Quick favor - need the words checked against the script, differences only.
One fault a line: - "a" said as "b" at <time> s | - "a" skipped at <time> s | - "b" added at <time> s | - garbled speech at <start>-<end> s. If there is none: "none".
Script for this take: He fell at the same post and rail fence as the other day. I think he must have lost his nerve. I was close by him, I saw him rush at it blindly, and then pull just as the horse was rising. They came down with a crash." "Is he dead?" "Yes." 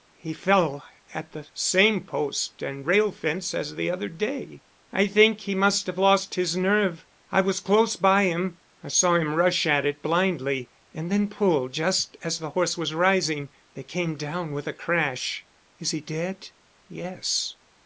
none